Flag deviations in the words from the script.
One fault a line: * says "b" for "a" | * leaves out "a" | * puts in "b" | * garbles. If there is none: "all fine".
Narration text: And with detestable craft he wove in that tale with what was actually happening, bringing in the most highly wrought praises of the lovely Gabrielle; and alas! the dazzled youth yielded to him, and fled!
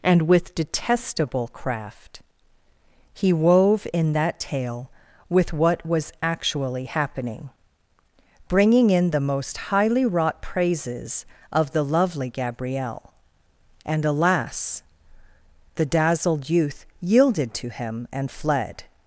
all fine